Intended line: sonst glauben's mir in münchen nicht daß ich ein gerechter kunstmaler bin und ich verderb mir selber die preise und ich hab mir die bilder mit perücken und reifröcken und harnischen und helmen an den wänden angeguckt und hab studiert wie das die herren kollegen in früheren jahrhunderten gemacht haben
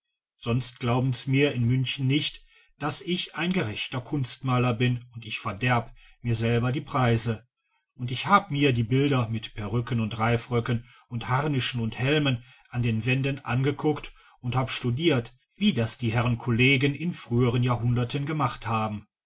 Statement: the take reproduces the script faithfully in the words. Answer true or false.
true